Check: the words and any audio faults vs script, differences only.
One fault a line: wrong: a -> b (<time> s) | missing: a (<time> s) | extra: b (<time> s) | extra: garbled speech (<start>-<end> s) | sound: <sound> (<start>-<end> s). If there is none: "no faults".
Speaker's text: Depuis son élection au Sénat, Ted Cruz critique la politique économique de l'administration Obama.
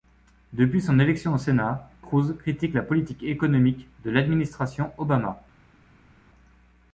missing: Ted (1.9 s)